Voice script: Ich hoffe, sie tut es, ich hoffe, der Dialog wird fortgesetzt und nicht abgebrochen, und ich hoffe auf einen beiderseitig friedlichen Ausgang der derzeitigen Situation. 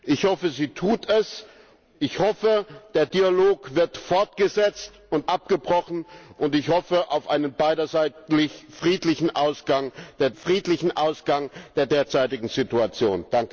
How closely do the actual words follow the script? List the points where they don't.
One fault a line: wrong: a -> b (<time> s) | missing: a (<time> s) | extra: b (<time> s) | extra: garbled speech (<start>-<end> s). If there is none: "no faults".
missing: nicht (5.3 s)
extra: friedlichen Ausgang der (10.3 s)